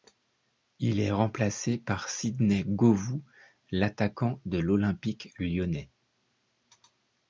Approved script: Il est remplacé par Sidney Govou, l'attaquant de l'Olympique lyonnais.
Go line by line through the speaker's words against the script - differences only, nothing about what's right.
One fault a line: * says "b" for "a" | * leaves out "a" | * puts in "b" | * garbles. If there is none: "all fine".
all fine